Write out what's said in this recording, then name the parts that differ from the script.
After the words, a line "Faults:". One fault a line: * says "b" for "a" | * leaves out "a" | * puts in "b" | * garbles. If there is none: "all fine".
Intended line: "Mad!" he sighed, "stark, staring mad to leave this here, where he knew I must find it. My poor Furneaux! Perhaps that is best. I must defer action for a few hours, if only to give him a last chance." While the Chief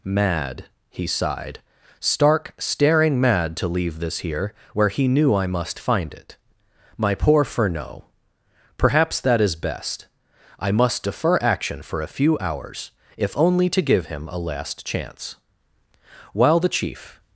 "Mad!" he sighed, "stark, staring mad to leave this here, where he knew I must find it. My poor Furneaux! Perhaps that is best. I must defer action for a few hours, if only to give him a last chance." While the Chief
Faults:
all fine